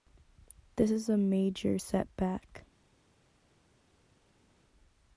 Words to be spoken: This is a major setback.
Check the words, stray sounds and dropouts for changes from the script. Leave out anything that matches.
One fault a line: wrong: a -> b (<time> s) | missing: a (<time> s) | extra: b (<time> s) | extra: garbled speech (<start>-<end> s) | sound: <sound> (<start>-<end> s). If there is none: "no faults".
no faults